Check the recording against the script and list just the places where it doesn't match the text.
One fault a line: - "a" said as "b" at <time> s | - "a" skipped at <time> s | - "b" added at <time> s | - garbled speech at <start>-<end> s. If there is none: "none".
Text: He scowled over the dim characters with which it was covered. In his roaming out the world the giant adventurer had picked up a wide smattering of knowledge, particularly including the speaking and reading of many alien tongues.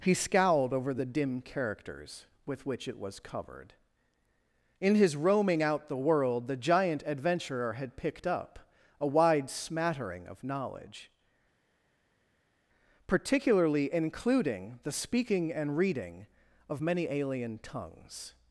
none